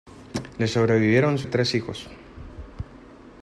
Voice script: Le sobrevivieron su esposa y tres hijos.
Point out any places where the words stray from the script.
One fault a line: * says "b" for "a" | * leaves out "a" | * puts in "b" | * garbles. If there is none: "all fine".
* leaves out "esposa"